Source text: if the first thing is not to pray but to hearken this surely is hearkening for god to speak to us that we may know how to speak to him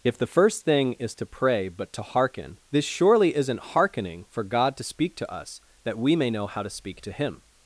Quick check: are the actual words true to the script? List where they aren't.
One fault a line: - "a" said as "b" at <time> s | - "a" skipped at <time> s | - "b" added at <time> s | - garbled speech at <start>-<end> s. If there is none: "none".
- "not" skipped at 1.1 s
- "is" said as "isn't" at 3.4 s